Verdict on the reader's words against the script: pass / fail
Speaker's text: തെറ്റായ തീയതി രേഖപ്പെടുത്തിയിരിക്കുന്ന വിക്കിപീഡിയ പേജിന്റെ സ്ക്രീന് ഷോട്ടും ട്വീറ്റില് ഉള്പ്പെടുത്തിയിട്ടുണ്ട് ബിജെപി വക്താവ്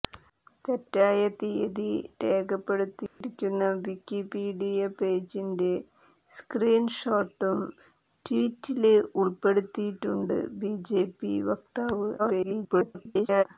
fail